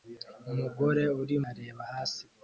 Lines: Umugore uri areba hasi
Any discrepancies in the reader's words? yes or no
no